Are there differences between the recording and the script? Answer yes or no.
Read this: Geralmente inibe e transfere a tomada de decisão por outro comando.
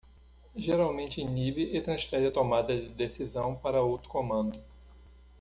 yes